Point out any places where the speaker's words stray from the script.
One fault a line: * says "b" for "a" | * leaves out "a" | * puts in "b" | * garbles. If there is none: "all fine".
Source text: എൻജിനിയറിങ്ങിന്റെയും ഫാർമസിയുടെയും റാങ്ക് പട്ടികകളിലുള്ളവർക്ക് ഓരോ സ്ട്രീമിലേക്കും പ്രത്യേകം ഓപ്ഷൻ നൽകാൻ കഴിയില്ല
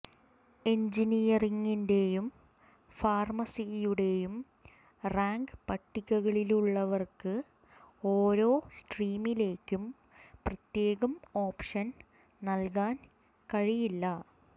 all fine